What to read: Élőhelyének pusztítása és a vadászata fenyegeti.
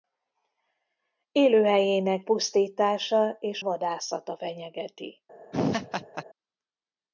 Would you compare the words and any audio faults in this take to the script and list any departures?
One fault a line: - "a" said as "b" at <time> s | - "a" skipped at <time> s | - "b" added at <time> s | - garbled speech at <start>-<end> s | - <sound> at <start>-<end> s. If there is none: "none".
- "a" skipped at 3.6 s
- laugh at 5.5-6.2 s